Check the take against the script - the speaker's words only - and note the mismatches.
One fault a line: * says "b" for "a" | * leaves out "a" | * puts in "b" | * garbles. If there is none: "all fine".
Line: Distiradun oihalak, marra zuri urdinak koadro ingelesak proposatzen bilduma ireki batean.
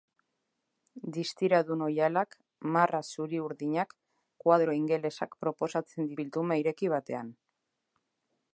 all fine